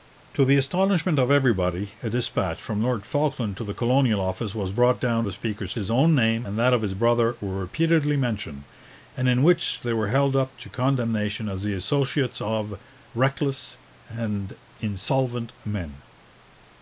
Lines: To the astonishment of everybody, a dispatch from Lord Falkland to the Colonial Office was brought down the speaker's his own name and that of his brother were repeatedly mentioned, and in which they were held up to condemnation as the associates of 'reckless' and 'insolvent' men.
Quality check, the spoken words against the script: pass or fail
pass